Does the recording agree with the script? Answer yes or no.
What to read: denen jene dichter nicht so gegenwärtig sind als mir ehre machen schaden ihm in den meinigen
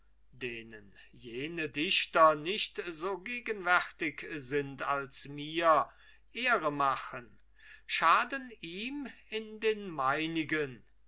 yes